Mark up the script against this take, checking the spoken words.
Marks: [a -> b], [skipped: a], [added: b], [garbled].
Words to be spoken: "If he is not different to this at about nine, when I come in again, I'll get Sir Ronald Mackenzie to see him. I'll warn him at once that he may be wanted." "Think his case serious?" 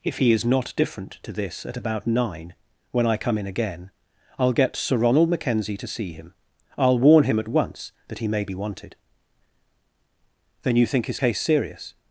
"If he is not different to this at about nine, when I come in again, I'll get Sir Ronald Mackenzie to see him. I'll warn him at once that he may be wanted." [added: Then you] "Think his case serious?"